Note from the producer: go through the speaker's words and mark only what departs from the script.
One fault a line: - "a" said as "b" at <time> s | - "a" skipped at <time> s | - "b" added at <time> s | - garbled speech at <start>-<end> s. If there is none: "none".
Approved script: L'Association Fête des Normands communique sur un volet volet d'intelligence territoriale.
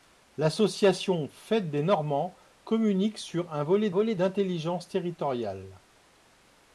none